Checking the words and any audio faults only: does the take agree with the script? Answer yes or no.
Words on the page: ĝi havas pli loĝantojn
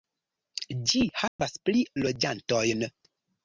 no